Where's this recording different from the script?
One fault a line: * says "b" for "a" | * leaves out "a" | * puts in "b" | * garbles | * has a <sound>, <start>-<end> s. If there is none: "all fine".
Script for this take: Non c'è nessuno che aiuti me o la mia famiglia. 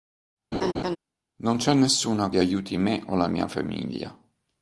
* has a laugh, 0.5-1.0 s